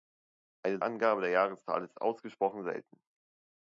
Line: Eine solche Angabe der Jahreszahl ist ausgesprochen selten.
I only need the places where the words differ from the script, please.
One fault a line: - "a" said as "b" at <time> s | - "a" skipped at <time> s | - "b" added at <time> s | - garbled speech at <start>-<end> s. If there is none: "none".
- "solche" skipped at 0.8 s